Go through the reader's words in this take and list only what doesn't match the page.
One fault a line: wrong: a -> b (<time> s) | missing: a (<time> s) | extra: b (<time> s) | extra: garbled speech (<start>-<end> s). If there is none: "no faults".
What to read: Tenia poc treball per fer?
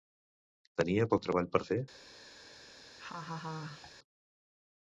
no faults